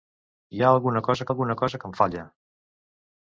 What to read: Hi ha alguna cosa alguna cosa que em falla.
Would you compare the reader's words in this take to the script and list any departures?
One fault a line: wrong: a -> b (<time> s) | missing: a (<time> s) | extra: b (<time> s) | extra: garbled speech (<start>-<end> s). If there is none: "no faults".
no faults